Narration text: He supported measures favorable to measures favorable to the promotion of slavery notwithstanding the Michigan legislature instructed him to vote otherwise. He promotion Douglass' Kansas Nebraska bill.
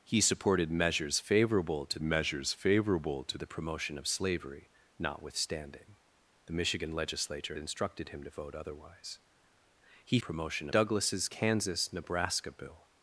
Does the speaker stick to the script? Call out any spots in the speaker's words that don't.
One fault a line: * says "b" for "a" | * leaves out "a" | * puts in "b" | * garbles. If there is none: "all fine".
all fine